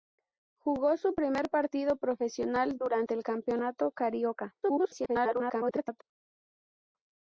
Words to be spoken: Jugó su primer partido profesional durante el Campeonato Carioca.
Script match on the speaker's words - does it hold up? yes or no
no